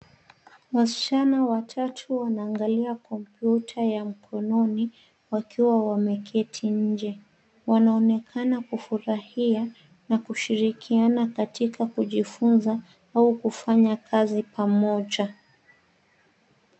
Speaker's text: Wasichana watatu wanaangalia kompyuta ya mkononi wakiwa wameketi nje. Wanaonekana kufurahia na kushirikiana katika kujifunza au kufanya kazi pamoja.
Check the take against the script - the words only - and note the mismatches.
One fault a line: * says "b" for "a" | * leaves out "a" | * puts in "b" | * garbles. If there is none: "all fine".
all fine